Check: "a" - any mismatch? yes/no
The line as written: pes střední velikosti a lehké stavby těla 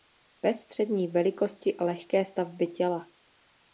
no